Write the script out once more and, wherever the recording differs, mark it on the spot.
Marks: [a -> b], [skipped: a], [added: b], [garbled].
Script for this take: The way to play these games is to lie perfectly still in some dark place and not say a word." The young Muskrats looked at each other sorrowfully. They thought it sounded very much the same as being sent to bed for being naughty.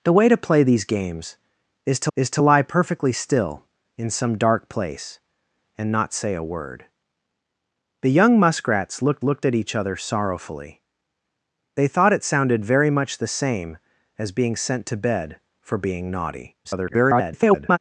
The way to play these games is to [added: is to] lie perfectly still in some dark place and not say a word." The young Muskrats looked [added: looked] at each other sorrowfully. They thought it sounded very much the same as being sent to bed for being naughty. [garbled]